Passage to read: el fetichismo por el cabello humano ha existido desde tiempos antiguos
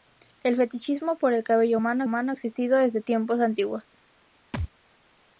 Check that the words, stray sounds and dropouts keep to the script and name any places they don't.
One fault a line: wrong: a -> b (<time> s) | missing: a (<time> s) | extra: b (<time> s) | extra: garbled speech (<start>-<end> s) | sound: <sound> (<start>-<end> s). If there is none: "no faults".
extra: humano (2.0 s)
sound: thud (4.5-4.7 s)